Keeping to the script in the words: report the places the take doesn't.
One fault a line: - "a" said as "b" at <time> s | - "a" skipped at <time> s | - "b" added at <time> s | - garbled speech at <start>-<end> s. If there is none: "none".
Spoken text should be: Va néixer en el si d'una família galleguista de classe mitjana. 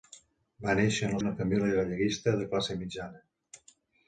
- "si" skipped at 1.2 s